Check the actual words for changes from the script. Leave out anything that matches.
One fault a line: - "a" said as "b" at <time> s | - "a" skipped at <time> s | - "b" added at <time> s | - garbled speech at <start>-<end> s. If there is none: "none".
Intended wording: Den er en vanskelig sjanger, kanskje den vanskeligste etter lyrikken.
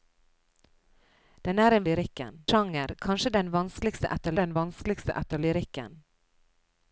- "vanskelig" said as "lyrikken" at 1.9 s
- "den vanskeligste etter" added at 4.4 s